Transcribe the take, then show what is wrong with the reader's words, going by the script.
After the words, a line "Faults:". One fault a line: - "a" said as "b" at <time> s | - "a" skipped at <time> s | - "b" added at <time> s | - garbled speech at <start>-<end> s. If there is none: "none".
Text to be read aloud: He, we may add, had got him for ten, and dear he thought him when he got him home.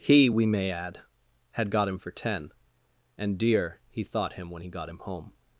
He, we may add, had got him for ten, and dear he thought him when he got him home.
Faults:
none